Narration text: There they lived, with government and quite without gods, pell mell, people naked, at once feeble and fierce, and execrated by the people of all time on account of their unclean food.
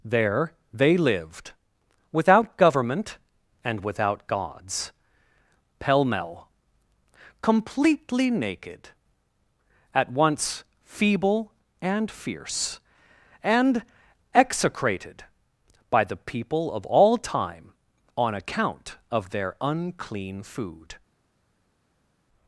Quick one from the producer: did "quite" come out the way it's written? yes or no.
no